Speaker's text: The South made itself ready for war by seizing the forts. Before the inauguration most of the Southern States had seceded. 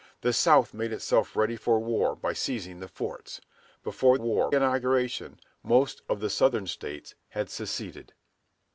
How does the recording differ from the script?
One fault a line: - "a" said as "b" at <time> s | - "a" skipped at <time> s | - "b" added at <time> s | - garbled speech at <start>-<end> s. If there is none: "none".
- "the" said as "war" at 4.2 s